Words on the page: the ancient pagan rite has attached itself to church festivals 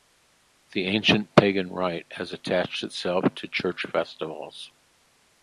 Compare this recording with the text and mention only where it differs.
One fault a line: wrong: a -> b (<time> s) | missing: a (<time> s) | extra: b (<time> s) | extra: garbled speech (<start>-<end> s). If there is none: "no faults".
no faults